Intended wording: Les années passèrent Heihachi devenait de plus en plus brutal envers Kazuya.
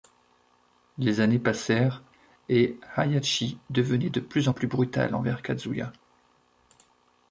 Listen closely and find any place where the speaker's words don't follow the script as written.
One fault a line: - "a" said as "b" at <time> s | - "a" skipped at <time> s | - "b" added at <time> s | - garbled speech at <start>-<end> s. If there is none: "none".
- "et" added at 2.5 s